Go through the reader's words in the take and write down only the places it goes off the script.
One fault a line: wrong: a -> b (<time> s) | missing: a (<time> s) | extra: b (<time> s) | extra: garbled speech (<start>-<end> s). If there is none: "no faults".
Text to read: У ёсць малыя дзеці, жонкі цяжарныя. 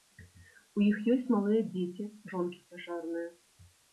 extra: іх (0.8 s)